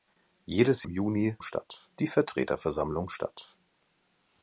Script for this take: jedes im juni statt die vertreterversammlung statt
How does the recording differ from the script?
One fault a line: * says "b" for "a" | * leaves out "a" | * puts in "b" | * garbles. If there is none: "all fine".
all fine